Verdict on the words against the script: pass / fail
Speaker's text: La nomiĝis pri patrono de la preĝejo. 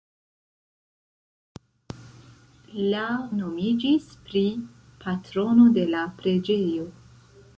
pass